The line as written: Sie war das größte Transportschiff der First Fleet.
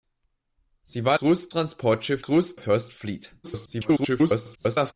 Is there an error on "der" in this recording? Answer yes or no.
yes